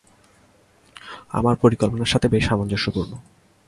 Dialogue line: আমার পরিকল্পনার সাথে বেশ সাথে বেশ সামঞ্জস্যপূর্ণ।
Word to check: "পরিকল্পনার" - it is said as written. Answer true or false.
true